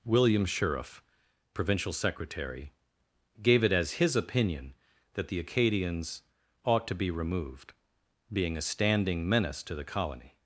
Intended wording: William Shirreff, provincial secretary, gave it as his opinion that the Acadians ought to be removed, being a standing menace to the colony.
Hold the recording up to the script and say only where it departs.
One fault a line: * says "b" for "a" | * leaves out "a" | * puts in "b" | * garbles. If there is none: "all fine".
all fine